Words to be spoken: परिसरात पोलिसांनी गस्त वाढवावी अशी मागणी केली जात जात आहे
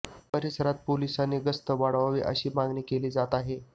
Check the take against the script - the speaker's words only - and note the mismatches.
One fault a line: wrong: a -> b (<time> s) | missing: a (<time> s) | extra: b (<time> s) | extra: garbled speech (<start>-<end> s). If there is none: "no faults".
missing: जात (3.4 s)